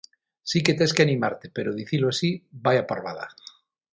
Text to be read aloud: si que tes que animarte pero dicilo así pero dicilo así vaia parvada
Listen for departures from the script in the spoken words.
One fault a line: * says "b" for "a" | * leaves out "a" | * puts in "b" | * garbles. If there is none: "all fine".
* leaves out "pero dicilo así"